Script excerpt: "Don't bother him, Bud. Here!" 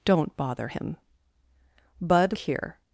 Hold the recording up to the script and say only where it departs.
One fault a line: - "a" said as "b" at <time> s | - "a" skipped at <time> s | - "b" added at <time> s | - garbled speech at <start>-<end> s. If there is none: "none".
none